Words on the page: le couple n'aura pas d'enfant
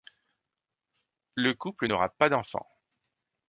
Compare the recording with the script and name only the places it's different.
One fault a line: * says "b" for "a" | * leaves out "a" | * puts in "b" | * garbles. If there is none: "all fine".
all fine